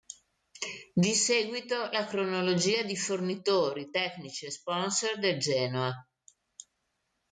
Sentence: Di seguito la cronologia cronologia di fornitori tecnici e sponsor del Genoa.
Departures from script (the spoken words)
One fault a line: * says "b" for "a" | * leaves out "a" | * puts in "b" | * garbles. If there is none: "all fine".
* leaves out "cronologia"